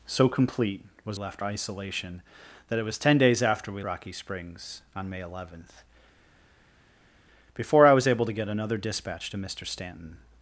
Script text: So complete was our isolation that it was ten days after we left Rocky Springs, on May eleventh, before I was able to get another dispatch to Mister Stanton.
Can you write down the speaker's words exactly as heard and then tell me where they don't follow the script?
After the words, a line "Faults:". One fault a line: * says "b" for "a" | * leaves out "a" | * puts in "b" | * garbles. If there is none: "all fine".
So complete was left isolation that it was ten days after we Rocky Springs, on May eleventh, before I was able to get another dispatch to Mister Stanton.
Faults:
* says "left" for "our"
* leaves out "left"